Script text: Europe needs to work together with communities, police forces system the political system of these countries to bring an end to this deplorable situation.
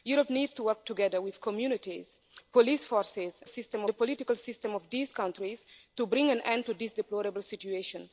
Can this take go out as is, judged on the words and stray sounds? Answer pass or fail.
pass